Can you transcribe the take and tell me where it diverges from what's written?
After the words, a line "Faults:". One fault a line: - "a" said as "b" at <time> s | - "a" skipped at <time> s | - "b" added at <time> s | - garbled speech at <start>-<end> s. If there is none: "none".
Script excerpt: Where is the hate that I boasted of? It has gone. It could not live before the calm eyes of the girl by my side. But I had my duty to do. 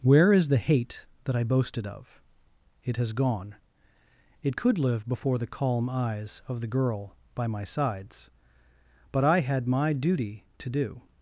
Where is the hate that I boasted of? It has gone. It could live before the calm eyes of the girl by my sides. But I had my duty to do.
Faults:
- "not" skipped at 4.8 s
- "side" said as "sides" at 7.7 s